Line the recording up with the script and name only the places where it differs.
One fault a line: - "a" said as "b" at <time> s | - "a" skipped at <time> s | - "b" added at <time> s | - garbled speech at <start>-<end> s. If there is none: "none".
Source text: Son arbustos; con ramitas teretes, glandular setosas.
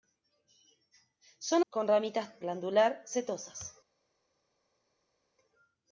- "arbustos" skipped at 1.6 s
- "teretes" skipped at 2.4 s